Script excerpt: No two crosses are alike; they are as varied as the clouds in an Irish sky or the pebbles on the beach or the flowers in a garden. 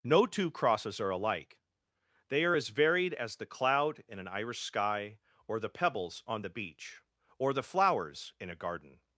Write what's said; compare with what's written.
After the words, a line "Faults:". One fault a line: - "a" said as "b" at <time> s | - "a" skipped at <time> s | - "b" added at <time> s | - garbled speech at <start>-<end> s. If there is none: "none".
No two crosses are alike; they are as varied as the cloud in an Irish sky or the pebbles on the beach or the flowers in a garden.
Faults:
- "clouds" said as "cloud" at 3.5 s